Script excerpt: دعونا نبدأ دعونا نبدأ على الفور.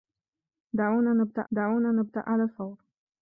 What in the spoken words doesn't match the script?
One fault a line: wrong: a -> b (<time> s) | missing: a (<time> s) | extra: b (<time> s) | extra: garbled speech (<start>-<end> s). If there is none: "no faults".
no faults